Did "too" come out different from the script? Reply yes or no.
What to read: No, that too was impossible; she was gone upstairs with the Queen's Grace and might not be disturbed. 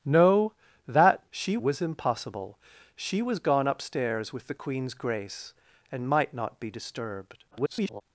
yes